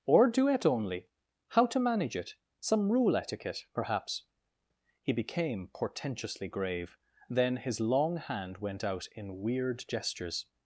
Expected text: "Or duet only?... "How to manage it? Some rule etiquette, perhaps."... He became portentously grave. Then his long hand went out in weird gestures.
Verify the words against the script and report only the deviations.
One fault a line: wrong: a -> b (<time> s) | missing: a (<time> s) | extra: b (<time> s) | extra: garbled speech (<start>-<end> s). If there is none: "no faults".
no faults